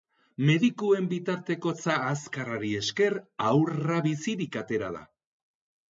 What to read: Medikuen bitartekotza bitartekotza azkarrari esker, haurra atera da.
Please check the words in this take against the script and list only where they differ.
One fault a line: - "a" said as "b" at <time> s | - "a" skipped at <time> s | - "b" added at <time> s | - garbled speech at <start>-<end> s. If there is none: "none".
- "bitartekotza" skipped at 2.0 s
- "bizirik" added at 4.1 s